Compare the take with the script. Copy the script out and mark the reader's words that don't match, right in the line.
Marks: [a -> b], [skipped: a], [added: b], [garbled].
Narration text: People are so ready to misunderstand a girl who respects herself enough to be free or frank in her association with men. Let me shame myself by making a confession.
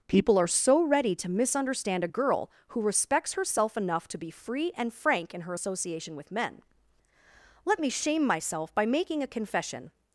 People are so ready to misunderstand a girl who respects herself enough to be free [or -> and] frank in her association with men. Let me shame myself by making a confession.